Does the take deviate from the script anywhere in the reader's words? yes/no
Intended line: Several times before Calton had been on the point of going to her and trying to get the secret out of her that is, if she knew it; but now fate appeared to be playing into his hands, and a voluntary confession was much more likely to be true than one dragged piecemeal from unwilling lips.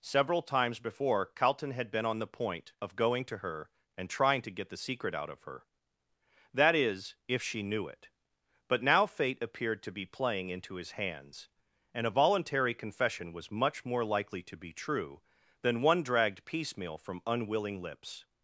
no